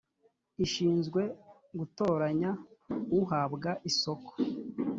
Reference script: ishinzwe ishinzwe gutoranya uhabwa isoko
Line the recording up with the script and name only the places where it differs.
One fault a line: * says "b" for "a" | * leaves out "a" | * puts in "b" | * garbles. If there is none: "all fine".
* leaves out "ishinzwe"